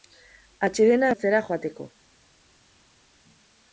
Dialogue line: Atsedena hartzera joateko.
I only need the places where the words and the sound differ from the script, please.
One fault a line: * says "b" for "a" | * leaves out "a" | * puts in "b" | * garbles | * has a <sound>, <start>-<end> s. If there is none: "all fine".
all fine